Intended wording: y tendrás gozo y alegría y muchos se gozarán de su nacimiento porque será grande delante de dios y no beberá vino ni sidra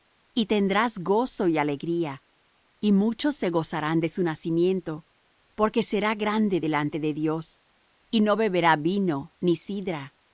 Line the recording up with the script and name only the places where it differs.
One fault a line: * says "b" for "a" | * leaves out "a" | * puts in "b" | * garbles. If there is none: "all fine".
all fine